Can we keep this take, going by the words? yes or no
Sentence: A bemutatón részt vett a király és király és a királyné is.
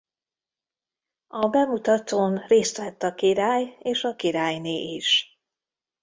no